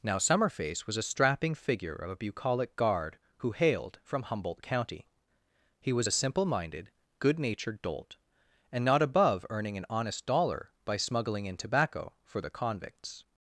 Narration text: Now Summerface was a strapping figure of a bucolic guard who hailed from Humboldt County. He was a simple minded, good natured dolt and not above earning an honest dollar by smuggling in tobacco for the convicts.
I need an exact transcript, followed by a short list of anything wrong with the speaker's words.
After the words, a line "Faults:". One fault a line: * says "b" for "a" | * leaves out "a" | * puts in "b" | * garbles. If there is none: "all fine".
Now Summerface was a strapping figure of a bucolic guard who hailed from Humboldt County. He was a simple minded, good natured dolt and not above earning an honest dollar by smuggling in tobacco for the convicts.
Faults:
all fine